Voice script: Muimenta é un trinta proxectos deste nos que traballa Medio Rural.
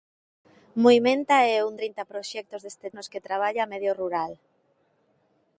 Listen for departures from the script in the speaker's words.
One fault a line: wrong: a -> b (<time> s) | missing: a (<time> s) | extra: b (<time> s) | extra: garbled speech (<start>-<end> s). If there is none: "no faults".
no faults